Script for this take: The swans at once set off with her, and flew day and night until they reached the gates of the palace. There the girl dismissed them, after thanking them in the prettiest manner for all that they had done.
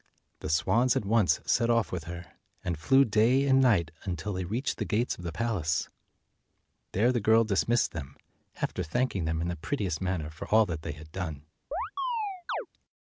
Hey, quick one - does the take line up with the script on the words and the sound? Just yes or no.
no